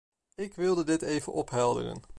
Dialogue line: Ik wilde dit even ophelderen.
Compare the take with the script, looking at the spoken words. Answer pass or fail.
pass